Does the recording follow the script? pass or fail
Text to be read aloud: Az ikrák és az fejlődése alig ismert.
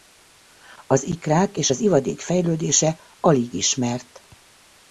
fail